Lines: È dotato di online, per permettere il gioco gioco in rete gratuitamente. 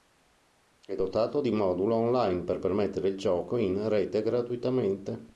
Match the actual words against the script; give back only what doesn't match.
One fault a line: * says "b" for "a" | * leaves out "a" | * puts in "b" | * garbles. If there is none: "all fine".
* puts in "modulo"
* leaves out "gioco"